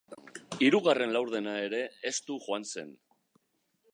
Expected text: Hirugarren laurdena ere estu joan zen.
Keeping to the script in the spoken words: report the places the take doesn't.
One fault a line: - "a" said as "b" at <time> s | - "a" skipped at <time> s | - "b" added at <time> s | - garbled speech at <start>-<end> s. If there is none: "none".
none